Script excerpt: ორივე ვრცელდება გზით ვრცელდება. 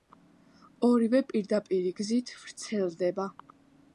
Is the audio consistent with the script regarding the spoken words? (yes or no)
no